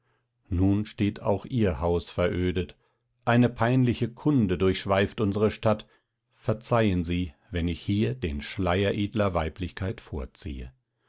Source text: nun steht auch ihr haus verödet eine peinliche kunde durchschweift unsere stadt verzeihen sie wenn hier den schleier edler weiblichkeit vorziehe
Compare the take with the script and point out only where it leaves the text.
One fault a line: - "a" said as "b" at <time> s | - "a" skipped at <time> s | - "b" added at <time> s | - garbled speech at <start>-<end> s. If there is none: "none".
- "ich" added at 7.7 s